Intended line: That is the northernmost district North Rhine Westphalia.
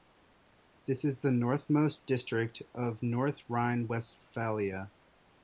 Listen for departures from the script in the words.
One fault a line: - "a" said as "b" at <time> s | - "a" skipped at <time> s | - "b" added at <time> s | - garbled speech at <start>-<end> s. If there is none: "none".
- "That" said as "This" at 0.9 s
- "of" added at 2.7 s